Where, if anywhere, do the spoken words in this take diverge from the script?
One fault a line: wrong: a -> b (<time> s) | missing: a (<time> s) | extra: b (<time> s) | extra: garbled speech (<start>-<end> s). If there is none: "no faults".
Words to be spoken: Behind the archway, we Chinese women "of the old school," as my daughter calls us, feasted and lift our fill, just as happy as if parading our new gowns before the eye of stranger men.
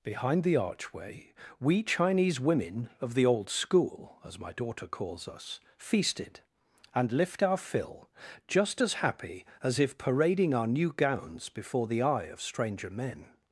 no faults